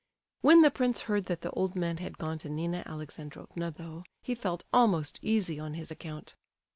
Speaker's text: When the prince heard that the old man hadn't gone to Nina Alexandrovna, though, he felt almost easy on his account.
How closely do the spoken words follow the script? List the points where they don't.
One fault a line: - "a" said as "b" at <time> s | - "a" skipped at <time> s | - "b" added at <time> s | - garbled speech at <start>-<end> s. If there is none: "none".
- "hadn't" said as "had" at 2.0 s